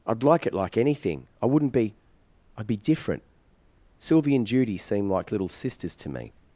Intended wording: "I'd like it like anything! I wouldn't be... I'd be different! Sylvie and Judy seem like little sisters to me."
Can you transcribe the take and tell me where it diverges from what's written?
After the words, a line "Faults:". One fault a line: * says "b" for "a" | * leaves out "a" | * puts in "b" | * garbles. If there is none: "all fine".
"I'd like it like anything! I wouldn't be... I'd be different! Sylvie and Judy seem like little sisters to me."
Faults:
all fine